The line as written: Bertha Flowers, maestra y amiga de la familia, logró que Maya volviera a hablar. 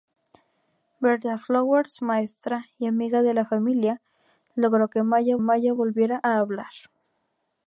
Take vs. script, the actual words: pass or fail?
fail